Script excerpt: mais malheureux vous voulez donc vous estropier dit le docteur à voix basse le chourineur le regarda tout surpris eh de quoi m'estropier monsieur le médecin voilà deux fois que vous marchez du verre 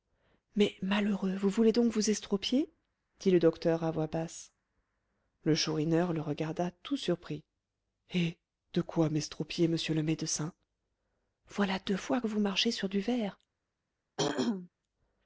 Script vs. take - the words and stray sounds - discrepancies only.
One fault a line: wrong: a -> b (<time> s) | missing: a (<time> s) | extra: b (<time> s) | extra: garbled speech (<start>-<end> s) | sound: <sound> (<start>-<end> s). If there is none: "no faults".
extra: sur (12.7 s)
sound: throat clearing (14.2-14.7 s)